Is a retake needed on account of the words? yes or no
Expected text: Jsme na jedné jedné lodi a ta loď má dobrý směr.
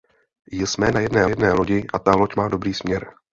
no